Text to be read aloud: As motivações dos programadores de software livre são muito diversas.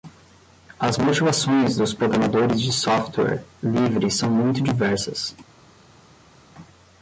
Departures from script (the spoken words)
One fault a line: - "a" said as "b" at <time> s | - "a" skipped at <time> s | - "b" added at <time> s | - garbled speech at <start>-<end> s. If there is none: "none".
none